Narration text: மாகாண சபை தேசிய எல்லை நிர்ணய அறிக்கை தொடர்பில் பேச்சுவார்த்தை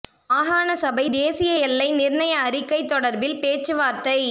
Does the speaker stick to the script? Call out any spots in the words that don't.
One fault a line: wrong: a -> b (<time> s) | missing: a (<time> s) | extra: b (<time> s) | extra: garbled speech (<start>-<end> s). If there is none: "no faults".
no faults